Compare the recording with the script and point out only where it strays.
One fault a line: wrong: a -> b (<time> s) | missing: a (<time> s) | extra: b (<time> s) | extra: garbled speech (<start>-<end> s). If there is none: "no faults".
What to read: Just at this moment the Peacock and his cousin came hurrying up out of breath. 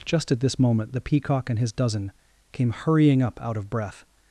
wrong: cousin -> dozen (1.7 s)